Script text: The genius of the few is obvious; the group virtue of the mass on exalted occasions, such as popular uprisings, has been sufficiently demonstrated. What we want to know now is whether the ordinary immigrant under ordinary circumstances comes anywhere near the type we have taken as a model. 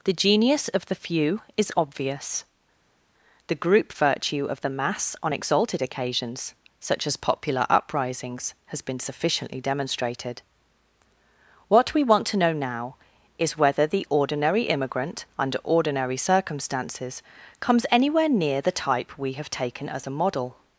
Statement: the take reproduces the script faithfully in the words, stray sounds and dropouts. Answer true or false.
true